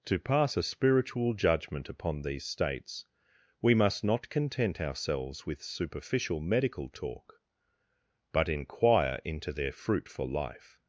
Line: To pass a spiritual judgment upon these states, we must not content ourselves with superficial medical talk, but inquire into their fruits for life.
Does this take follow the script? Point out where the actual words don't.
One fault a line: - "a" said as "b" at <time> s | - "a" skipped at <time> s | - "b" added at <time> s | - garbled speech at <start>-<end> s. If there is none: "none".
- "fruits" said as "fruit" at 9.7 s